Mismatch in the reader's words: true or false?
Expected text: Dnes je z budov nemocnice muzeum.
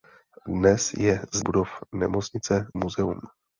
false